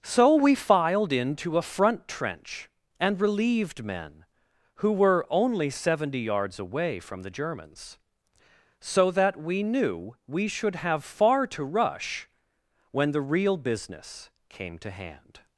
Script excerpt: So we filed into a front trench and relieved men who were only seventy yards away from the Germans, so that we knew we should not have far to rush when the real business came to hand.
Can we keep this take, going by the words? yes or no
no